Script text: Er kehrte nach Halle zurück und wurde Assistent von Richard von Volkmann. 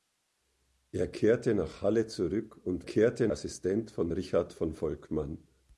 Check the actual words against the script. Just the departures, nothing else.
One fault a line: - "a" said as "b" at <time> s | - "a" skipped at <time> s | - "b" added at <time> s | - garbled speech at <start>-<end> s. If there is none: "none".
- "wurde" said as "kehrte" at 2.8 s